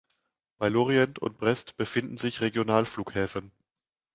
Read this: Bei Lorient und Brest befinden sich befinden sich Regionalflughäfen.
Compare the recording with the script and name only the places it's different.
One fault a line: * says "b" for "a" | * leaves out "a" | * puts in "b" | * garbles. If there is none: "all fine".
* leaves out "befinden sich"